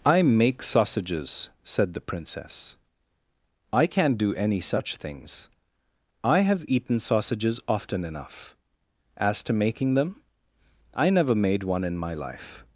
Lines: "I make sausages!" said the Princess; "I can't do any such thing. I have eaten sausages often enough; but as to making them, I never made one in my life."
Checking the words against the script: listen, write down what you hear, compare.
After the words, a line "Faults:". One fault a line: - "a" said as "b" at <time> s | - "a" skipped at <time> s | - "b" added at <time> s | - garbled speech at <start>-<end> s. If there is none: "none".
"I make sausages!" said the Princess; "I can't do any such things. I have eaten sausages often enough; as to making them, I never made one in my life."
Faults:
- "thing" said as "things" at 5.0 s
- "but" skipped at 8.6 s